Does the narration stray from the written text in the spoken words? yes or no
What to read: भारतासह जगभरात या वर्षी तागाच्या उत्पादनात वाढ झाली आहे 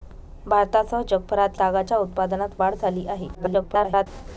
yes